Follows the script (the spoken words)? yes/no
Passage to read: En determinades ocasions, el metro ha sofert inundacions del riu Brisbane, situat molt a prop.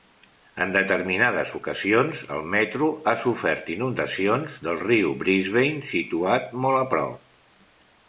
yes